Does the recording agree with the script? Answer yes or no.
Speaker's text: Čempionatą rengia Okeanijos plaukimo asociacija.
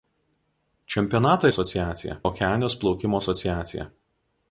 no